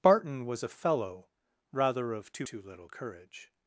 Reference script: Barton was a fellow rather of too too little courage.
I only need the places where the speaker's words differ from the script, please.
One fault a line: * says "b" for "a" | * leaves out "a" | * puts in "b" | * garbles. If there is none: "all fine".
all fine